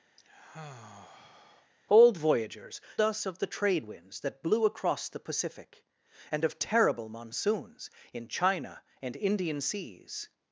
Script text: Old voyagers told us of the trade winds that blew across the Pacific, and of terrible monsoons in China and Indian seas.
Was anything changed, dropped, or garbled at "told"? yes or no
yes